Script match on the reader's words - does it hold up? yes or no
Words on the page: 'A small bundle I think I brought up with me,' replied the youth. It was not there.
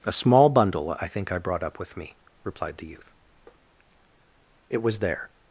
no